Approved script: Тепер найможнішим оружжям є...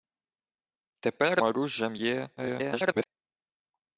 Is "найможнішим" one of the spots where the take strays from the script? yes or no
yes